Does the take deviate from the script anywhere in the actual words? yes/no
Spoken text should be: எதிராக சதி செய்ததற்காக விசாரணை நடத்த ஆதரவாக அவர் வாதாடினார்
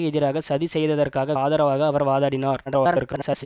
yes